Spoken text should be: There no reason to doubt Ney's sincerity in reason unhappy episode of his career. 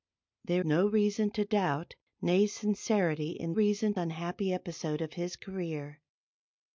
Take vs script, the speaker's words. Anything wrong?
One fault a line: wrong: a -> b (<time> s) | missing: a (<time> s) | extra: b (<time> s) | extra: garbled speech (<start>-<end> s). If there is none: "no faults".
no faults